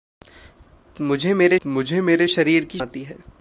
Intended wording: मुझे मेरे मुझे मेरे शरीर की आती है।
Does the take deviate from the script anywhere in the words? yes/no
no